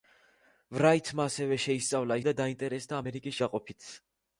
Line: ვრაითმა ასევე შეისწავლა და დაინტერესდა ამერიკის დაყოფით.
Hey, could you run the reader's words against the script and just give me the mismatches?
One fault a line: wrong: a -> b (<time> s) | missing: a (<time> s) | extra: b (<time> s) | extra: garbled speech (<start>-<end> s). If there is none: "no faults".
no faults